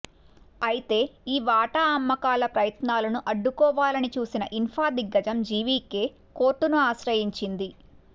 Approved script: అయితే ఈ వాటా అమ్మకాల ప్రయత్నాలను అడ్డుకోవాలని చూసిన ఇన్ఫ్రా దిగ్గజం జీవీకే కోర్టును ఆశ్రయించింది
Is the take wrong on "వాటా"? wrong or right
right